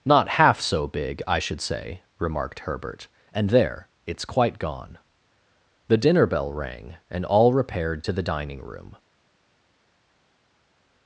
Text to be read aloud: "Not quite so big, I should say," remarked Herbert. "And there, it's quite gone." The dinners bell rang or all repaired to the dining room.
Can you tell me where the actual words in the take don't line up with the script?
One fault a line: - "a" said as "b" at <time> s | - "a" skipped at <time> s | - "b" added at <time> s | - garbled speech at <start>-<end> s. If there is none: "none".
- "quite" said as "half" at 0.3 s
- "dinners" said as "dinner" at 6.0 s
- "or" said as "and" at 7.1 s